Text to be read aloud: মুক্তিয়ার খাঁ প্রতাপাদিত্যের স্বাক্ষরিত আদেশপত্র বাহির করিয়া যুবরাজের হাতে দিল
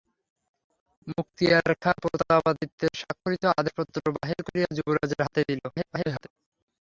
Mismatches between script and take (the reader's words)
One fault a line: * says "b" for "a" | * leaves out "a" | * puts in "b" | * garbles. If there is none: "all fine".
* garbles